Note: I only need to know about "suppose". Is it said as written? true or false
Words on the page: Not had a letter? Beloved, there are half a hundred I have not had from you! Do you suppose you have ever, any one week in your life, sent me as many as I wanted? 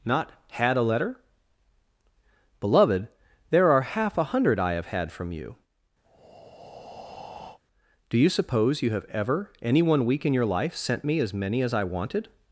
true